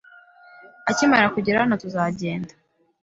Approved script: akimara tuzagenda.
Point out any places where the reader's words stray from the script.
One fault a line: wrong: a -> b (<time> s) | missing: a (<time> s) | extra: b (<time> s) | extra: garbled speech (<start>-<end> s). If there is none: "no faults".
extra: kugera hano (1.4 s)